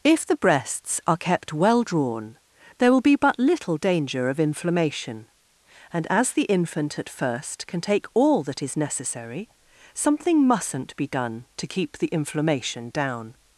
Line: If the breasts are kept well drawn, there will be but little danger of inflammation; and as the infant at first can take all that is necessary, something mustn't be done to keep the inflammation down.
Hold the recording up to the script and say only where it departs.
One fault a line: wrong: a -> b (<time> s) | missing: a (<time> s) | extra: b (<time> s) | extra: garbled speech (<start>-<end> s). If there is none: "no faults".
no faults